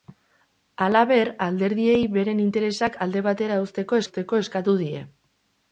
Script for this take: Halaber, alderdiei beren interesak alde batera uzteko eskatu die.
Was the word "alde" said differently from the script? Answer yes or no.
no